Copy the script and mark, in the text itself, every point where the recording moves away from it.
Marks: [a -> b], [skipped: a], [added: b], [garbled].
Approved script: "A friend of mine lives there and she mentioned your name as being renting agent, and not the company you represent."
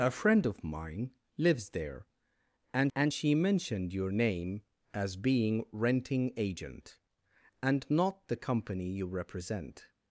"A friend of mine lives there and [added: and] she mentioned your name as being renting agent, and not the company you represent."